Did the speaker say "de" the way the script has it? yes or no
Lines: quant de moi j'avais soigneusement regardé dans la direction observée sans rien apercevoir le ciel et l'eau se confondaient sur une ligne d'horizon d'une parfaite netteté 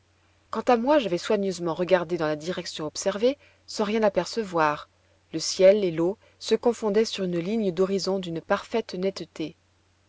no